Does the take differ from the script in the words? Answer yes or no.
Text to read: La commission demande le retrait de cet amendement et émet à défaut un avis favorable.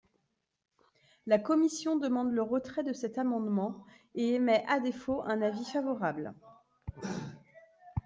no